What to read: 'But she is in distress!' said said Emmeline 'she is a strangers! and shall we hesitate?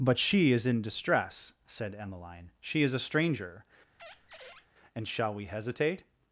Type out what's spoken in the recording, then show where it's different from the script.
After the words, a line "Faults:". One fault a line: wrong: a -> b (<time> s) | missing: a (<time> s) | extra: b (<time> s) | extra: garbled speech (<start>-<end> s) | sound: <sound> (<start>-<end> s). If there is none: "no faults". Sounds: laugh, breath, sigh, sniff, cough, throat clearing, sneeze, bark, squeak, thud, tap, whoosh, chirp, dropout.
'But she is in distress!' said Emmeline 'she is a stranger! and shall we hesitate?
Faults:
missing: said (1.9 s)
wrong: strangers -> stranger (3.0 s)
sound: squeak (4.0-4.7 s)